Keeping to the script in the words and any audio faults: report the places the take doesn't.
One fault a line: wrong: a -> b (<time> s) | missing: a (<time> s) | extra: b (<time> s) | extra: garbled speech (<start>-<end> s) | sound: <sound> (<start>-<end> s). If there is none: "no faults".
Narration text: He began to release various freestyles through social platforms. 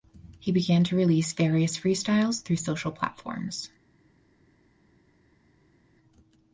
no faults